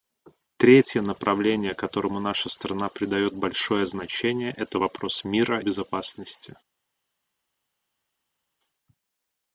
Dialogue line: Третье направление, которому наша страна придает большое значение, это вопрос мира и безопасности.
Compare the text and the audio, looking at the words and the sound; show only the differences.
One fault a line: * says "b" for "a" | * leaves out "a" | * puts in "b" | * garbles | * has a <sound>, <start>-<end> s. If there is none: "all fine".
* leaves out "и"